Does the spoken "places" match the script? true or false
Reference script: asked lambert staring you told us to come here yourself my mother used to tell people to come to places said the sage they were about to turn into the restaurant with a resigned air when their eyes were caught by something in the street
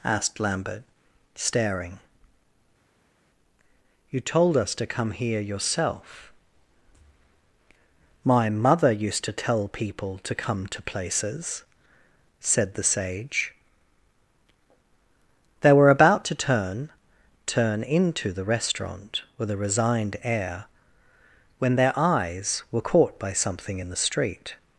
true